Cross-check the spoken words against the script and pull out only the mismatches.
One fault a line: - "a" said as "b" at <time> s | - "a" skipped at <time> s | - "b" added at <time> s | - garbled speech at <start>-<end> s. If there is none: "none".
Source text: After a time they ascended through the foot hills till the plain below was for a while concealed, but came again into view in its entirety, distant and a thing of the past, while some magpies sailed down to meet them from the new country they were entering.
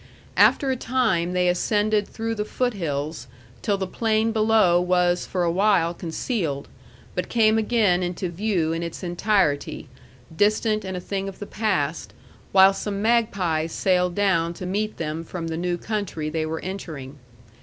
none